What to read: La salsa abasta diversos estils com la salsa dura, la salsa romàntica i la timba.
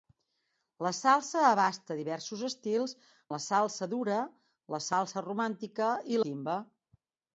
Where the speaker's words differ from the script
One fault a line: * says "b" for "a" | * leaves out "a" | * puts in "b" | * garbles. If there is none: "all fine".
* leaves out "com"
* leaves out "la"